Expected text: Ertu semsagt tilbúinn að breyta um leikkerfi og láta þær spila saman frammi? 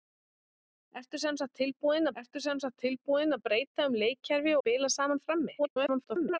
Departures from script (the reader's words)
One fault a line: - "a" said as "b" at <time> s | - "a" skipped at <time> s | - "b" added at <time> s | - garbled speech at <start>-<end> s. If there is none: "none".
- "ertu semsagt tilbúinn" added at 2.2 s
- "og láta þær" skipped at 4.5 s
- garbled speech at 5.6-6.4 s